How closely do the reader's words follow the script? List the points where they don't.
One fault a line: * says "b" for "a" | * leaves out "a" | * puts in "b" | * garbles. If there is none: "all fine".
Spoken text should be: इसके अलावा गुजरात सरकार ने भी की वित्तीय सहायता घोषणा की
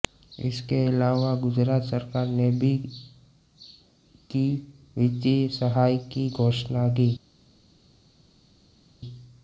* puts in "की"